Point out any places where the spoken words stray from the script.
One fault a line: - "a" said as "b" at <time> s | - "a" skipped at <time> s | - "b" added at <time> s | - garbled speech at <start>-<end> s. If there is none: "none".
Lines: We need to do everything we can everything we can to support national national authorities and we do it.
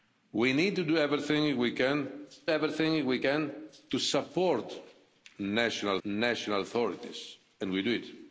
none